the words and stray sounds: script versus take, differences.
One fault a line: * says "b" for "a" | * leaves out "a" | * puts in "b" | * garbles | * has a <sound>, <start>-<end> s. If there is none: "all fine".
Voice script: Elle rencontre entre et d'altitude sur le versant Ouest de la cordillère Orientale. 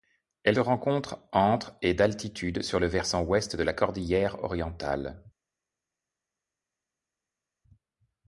all fine